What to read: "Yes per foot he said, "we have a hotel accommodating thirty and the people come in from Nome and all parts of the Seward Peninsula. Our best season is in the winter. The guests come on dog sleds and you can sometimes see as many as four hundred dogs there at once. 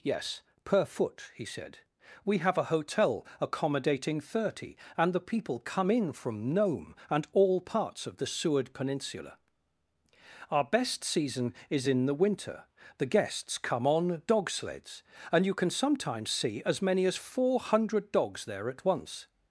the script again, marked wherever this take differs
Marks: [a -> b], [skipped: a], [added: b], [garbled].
"Yes per foot he said, "we have a hotel accommodating thirty and the people come in from Nome and all parts of the Seward Peninsula. Our best season is in the winter. The guests come on dog sleds and you can sometimes see as many as four hundred dogs there at once.